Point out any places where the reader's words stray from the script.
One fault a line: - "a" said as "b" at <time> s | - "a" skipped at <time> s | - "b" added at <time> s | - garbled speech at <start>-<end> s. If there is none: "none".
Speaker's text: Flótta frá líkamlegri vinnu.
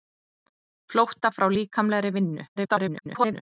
- garbled speech at 2.6-3.4 s